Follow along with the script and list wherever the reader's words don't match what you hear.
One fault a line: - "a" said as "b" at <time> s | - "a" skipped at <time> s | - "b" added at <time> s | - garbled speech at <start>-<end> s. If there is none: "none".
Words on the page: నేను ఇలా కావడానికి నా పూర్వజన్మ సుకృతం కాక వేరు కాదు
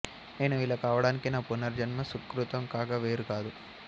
none